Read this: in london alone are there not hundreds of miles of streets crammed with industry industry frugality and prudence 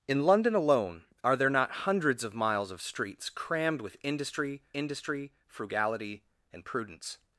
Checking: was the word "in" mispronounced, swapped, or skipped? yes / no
no